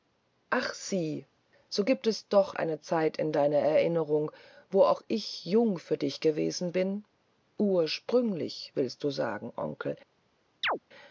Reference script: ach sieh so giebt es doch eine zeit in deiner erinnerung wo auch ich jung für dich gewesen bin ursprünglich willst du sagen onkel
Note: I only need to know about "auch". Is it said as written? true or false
true